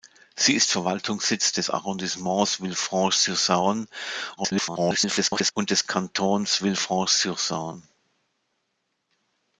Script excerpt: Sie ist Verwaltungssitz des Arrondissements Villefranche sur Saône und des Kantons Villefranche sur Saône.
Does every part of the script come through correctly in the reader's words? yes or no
no